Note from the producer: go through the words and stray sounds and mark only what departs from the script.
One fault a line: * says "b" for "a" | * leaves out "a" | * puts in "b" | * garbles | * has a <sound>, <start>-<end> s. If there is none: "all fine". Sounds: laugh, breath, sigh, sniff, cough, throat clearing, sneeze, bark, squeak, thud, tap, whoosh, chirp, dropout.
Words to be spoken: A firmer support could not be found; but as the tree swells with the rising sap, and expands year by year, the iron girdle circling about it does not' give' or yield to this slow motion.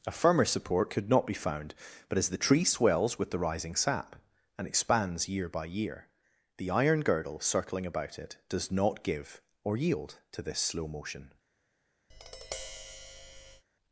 * has a tap, 12.1-13.6 s